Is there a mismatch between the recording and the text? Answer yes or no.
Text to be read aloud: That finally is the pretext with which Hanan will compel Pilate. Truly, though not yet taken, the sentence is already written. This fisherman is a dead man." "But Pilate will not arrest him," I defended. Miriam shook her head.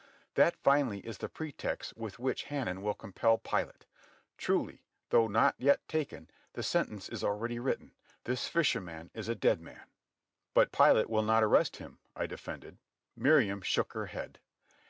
no